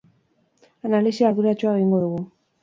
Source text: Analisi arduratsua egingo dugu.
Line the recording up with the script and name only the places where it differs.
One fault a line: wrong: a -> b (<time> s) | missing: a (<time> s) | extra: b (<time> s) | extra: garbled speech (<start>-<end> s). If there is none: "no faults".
no faults